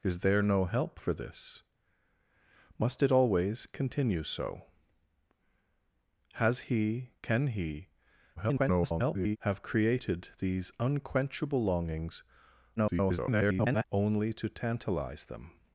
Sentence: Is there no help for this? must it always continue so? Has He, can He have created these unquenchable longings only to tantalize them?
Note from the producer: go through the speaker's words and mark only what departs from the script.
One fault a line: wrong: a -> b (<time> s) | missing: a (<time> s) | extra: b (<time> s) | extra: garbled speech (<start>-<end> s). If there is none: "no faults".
extra: garbled speech (8.4-9.4 s)
extra: garbled speech (12.8-13.8 s)